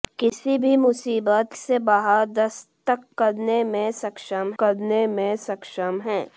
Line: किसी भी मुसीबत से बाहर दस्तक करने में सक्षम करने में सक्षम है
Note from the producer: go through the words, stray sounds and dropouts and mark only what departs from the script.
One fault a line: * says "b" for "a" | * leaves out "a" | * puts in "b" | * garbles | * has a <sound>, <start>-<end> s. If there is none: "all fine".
all fine